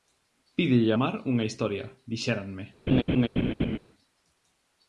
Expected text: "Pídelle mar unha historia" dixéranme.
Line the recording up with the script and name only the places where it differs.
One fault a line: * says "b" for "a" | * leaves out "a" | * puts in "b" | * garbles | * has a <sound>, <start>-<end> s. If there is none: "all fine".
* has a laugh, 2.9-3.8 s